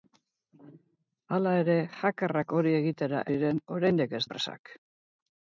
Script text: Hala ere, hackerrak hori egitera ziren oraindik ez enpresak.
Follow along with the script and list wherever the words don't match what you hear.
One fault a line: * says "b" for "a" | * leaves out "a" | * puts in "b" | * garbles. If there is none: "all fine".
all fine